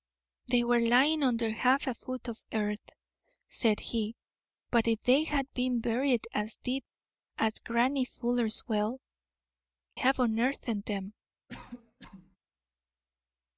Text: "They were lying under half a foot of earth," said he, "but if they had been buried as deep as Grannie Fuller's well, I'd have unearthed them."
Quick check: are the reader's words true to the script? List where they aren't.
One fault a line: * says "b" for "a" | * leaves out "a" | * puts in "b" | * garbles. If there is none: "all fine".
* leaves out "I'd"